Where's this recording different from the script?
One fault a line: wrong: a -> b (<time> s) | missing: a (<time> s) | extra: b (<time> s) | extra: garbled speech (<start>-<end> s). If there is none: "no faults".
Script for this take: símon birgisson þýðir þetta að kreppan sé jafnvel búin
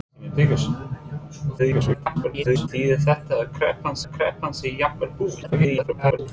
extra: garbled speech (1.6-2.7 s)
extra: að kreppan (4.0 s)
extra: garbled speech (5.4-6.2 s)